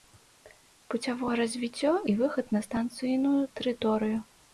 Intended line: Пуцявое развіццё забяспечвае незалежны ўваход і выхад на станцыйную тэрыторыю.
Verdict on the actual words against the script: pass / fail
fail